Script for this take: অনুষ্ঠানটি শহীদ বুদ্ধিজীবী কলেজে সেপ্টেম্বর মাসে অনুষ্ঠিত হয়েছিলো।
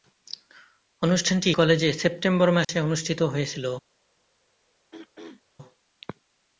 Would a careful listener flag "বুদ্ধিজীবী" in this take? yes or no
yes